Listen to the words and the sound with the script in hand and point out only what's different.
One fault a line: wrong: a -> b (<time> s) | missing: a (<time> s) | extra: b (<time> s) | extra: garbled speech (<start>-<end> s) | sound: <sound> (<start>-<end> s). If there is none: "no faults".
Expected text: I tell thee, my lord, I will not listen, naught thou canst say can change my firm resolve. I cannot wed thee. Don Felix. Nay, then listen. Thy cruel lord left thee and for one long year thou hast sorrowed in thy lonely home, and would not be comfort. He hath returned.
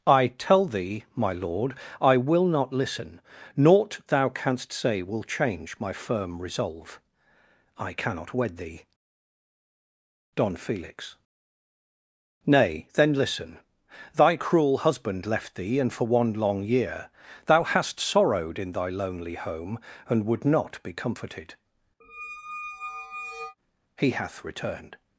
wrong: can -> will (5.0 s)
wrong: lord -> husband (14.8 s)
wrong: comfort -> comforted (20.9 s)
sound: squeak (22.0-23.6 s)